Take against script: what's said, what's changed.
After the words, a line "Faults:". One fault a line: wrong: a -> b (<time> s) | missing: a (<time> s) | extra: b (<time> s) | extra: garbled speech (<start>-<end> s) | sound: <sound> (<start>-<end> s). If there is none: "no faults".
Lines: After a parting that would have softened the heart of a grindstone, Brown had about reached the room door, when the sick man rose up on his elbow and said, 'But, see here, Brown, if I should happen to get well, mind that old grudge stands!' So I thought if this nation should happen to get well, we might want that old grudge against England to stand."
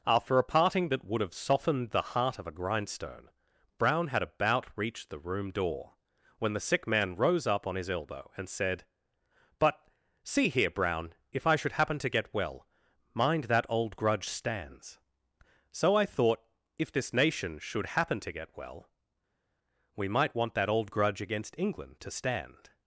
After a parting that would have softened the heart of a grindstone, Brown had about reached the room door, when the sick man rose up on his elbow and said, 'But, see here, Brown, if I should happen to get well, mind that old grudge stands!' So I thought if this nation should happen to get well, we might want that old grudge against England to stand."
Faults:
no faults